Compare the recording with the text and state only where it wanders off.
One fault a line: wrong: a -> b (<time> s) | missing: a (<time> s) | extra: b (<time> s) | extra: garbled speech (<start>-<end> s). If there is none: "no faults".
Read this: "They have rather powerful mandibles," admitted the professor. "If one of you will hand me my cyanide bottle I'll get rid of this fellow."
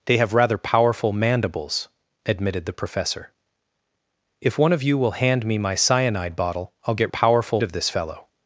wrong: rid -> powerful (7.1 s)